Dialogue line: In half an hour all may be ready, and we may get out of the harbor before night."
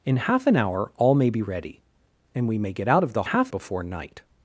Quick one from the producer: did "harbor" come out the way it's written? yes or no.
no